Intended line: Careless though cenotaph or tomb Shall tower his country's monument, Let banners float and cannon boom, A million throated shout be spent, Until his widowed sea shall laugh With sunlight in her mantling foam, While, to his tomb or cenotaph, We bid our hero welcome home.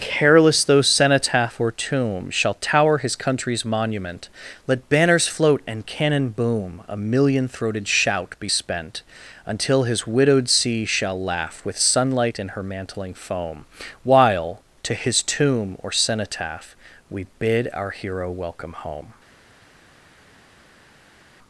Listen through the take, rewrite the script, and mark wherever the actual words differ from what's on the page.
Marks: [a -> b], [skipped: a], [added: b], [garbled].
Careless though cenotaph or tomb Shall tower his country's monument, Let banners float and cannon boom, A million throated shout be spent, Until his widowed sea shall laugh With sunlight in her mantling foam, While, to his tomb or cenotaph, We bid our hero welcome home.